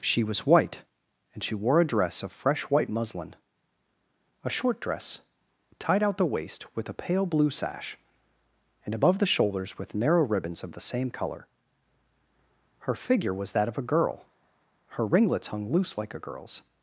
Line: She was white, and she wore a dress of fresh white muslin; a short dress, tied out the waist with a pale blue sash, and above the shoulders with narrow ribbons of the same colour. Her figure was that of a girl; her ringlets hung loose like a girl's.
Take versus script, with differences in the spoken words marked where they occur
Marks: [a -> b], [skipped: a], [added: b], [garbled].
She was white, and she wore a dress of fresh white muslin; a short dress, tied out the waist with a pale blue sash, and above the shoulders with narrow ribbons of the same colour. Her figure was that of a girl; her ringlets hung loose like a girl's.